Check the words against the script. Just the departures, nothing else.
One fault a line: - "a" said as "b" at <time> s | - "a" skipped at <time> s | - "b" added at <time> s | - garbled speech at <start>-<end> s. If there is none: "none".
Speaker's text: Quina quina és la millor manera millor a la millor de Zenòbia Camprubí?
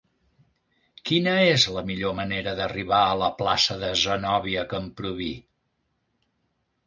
- "quina" skipped at 1.3 s
- "millor" said as "d'arribar" at 2.6 s
- "millor" said as "plaça" at 3.4 s